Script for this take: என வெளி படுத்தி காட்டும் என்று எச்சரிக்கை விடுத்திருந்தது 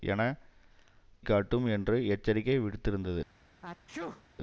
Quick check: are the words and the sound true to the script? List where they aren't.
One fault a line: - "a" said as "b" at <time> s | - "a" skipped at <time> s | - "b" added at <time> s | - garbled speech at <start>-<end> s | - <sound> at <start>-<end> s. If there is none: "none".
- "வெளி படுத்தி" skipped at 0.2 s
- sneeze at 3.6-4.2 s